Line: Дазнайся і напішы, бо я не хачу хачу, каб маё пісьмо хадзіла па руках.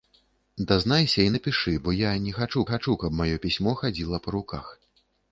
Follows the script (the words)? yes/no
yes